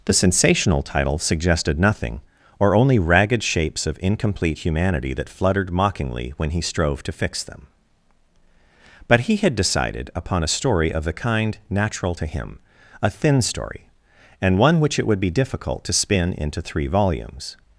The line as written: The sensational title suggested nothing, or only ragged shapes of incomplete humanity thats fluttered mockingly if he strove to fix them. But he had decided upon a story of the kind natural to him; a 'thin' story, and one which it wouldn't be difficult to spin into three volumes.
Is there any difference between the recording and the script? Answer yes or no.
yes